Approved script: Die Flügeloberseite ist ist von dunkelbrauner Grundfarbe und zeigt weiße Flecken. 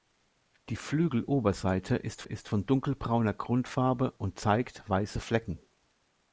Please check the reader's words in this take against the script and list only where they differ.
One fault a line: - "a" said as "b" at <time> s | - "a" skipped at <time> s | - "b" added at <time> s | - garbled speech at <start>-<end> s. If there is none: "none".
none